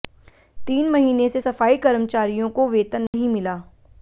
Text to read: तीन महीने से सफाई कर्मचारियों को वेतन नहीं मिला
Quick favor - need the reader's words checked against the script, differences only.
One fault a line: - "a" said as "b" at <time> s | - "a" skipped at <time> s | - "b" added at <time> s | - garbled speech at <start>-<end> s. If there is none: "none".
none